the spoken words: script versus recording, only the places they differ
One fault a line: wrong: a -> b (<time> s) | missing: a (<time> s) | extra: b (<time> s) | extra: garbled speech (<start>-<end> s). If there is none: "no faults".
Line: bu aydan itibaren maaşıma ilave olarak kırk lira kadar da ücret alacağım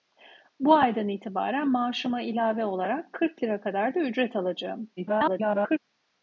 extra: garbled speech (5.0-5.8 s)